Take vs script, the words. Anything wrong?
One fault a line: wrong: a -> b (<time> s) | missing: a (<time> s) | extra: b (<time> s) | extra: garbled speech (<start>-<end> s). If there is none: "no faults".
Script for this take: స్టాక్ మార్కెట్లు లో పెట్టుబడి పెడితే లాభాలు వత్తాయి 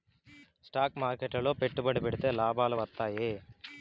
no faults